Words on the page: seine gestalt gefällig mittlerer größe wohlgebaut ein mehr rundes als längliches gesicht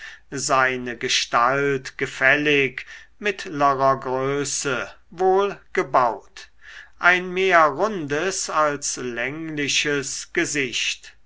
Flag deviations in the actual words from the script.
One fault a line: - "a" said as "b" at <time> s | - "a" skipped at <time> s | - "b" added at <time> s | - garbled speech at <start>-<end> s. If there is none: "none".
none